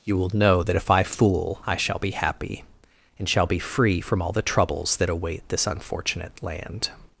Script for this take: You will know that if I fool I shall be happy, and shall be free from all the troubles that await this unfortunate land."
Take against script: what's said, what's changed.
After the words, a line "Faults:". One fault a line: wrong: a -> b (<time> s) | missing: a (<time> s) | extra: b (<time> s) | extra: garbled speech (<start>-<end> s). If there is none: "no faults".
You will know that if I fool I shall be happy, and shall be free from all the troubles that await this unfortunate land."
Faults:
no faults